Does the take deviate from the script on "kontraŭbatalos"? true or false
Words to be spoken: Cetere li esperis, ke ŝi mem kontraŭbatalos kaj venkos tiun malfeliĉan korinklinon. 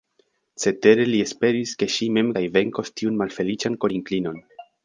true